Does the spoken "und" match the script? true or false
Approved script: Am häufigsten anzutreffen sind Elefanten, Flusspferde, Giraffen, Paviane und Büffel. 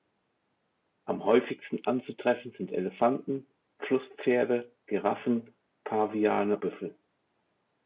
false